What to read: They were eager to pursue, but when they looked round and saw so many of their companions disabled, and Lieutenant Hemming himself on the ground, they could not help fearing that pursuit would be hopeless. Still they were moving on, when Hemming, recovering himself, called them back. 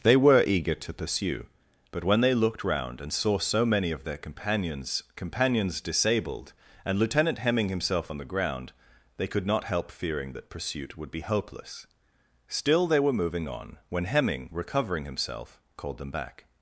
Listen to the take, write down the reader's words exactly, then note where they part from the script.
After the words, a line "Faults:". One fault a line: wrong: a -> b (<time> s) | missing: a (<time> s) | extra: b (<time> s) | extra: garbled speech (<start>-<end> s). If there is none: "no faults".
They were eager to pursue, but when they looked round and saw so many of their companions companions disabled, and Lieutenant Hemming himself on the ground, they could not help fearing that pursuit would be hopeless. Still they were moving on, when Hemming, recovering himself, called them back.
Faults:
extra: companions (5.2 s)